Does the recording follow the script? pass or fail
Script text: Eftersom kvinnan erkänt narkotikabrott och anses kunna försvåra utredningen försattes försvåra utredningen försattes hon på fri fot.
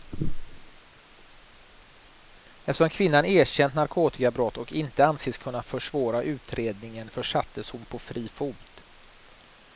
fail